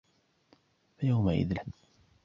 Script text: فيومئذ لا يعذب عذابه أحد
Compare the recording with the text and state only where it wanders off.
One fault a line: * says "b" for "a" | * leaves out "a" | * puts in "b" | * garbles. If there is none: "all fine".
* leaves out "لا يعذب عذابه"